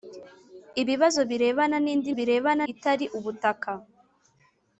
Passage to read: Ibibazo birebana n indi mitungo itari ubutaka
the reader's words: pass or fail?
fail